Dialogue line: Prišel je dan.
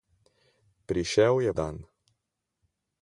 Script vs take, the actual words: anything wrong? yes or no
no